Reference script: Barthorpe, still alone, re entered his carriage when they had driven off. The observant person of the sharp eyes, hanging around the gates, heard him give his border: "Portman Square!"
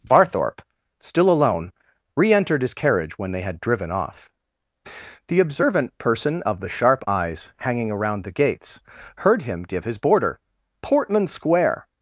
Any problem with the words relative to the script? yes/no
no